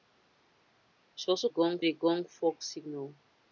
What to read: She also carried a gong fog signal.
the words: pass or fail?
fail